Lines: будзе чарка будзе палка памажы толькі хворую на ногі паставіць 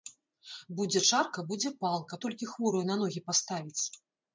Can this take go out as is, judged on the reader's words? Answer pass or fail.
fail